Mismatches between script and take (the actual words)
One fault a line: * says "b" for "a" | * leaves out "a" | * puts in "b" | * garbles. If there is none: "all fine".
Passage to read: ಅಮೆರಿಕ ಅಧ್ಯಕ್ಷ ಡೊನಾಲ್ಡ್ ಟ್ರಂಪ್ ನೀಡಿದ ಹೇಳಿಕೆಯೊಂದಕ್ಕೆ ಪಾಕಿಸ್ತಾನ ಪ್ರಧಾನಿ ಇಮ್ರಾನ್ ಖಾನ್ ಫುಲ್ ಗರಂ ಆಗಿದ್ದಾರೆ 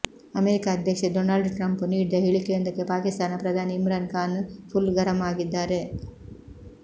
all fine